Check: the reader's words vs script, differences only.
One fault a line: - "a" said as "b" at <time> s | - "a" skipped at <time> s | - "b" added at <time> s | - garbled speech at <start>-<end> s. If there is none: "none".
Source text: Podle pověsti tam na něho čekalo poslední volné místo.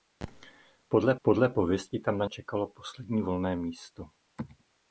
- "podle" added at 1.2 s
- "něho" skipped at 2.2 s